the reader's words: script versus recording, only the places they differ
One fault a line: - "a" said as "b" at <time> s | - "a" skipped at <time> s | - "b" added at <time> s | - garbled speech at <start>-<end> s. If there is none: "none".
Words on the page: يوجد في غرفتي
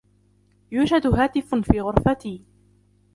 - "هاتف" added at 1.1 s